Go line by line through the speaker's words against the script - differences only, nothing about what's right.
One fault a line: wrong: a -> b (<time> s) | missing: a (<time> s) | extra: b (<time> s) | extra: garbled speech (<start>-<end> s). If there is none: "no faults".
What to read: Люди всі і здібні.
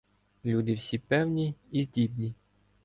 extra: певні (1.0 s)